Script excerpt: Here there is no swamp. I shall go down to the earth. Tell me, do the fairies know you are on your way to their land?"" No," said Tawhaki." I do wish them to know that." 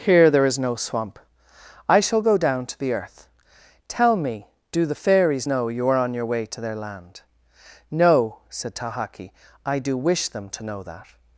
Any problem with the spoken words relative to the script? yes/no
no